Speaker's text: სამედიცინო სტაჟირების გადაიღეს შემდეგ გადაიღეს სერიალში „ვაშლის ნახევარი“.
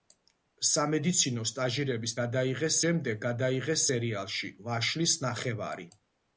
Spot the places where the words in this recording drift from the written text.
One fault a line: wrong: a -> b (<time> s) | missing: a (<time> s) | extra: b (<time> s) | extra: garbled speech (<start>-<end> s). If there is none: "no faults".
no faults